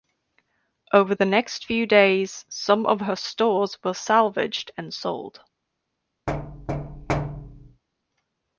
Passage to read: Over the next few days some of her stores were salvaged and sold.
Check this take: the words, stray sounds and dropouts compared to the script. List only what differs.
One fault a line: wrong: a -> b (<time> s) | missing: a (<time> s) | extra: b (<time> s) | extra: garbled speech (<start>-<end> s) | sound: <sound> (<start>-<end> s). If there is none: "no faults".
sound: thud (6.3-7.8 s)